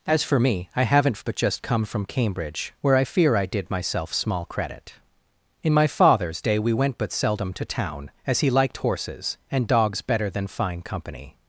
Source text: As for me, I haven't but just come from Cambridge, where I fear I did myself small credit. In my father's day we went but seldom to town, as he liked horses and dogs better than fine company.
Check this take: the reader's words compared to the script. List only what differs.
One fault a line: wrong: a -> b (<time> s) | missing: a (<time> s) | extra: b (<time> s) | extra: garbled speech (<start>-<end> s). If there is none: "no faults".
no faults